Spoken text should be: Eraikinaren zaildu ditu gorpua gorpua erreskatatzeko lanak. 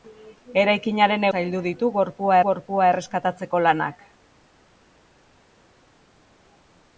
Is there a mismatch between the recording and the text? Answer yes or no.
no